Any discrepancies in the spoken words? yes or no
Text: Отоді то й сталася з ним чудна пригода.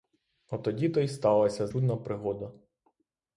yes